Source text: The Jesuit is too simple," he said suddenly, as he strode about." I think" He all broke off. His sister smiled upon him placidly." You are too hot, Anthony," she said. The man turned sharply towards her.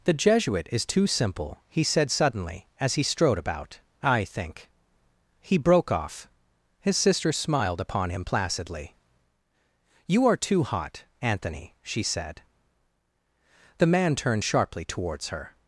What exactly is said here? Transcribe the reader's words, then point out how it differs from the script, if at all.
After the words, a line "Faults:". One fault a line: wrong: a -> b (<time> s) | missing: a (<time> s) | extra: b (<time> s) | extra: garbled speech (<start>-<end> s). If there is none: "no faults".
The Jesuit is too simple," he said suddenly, as he strode about." I think" He broke off. His sister smiled upon him placidly." You are too hot, Anthony," she said. The man turned sharply towards her.
Faults:
missing: all (5.6 s)